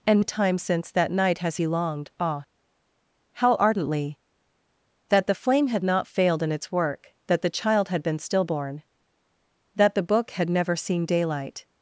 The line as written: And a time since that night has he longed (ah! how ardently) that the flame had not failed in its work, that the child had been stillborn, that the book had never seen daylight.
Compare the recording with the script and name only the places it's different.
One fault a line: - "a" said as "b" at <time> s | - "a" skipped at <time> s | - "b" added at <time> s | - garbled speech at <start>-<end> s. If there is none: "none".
none